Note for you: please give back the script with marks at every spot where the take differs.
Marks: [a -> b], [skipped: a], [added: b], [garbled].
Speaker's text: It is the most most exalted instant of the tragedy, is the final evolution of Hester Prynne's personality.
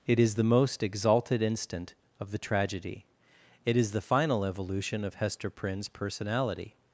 It is the most [skipped: most] exalted instant of the tragedy, [added: it] is the final evolution of Hester Prynne's personality.